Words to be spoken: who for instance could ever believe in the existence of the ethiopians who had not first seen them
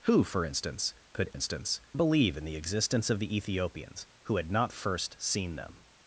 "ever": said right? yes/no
no